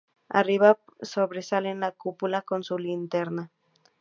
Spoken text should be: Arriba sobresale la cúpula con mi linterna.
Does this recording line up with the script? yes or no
no